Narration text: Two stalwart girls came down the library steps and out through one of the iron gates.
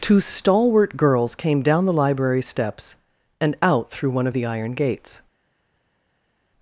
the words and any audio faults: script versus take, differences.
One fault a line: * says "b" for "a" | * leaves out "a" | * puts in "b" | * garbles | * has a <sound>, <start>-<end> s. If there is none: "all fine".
all fine